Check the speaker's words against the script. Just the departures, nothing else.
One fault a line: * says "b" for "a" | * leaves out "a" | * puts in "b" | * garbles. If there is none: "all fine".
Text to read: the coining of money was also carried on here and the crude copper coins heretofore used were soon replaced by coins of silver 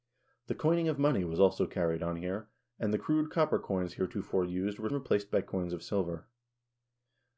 * leaves out "soon"